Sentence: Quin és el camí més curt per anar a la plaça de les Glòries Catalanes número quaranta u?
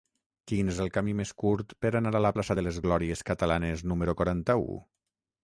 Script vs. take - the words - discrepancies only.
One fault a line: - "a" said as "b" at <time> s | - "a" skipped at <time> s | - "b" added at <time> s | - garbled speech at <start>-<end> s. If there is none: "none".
none